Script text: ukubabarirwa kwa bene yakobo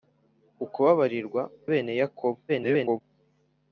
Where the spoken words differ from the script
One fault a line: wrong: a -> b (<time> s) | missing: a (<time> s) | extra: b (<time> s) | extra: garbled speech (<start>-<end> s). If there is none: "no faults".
missing: kwa (1.4 s)
extra: garbled speech (2.5-3.0 s)